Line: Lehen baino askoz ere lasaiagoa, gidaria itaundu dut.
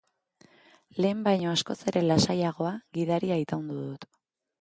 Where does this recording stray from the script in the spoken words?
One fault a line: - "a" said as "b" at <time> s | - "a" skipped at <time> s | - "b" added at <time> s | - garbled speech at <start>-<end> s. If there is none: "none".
none